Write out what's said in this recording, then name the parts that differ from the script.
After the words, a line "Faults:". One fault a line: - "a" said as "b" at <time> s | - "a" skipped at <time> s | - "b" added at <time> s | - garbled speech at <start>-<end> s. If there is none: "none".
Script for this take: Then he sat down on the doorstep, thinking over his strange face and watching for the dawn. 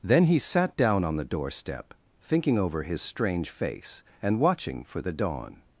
Then he sat down on the doorstep, thinking over his strange face and watching for the dawn.
Faults:
none